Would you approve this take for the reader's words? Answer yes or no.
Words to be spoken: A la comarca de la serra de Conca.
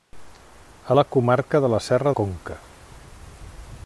no